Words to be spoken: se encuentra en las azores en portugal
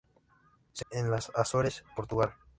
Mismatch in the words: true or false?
true